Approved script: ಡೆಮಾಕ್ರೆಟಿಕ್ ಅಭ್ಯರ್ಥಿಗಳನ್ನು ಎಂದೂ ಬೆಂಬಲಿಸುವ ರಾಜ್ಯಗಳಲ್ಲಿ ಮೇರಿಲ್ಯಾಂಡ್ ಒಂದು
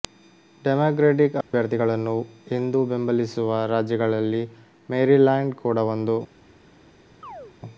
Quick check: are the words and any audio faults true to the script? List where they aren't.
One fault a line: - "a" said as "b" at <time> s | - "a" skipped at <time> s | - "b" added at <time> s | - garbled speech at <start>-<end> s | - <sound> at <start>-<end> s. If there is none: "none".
- dropout at 1.4-1.5 s
- "ಕೂಡ" added at 5.6 s
- chirp at 7.2-7.5 s